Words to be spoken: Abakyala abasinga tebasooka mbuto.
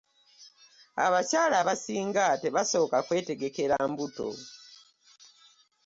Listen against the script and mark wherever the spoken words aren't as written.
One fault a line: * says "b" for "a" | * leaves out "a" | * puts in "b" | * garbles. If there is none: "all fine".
* puts in "kwetegekera"